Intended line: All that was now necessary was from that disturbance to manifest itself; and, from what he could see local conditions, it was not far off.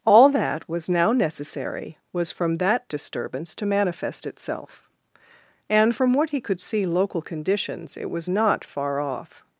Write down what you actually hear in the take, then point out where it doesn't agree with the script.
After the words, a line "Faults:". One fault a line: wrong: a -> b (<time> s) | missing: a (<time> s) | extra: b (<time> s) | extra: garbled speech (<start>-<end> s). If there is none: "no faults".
All that was now necessary was from that disturbance to manifest itself; and, from what he could see local conditions, it was not far off.
Faults:
no faults